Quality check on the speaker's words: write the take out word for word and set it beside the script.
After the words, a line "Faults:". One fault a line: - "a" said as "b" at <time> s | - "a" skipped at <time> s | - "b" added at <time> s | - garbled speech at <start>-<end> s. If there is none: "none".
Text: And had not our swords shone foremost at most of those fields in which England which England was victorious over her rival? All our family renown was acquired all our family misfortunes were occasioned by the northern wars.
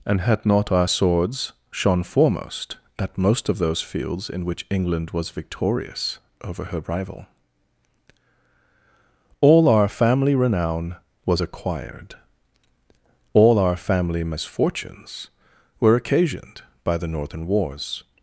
And had not our swords shone foremost at most of those fields in which England was victorious over her rival? All our family renown was acquired all our family misfortunes were occasioned by the northern wars.
Faults:
- "which England" skipped at 5.1 s